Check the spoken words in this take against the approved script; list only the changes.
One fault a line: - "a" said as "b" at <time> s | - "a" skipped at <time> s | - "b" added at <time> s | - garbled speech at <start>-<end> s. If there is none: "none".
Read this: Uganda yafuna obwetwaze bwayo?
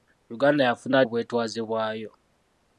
none